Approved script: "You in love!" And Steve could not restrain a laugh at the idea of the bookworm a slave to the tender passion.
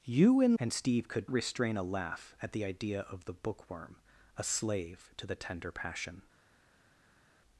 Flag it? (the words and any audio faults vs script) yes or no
yes